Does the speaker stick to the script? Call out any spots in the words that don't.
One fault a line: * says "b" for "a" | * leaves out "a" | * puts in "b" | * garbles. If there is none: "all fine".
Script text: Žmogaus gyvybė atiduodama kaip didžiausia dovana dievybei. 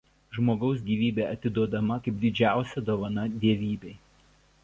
all fine